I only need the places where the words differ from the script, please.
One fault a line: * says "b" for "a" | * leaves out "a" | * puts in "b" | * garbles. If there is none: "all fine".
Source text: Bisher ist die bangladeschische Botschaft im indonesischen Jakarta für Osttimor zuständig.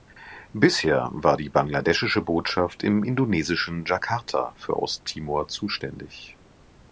* says "war" for "ist"